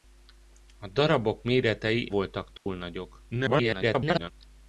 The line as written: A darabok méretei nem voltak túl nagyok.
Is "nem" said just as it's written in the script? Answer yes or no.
no